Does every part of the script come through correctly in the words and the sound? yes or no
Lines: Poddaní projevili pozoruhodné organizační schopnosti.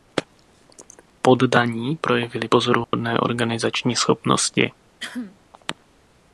no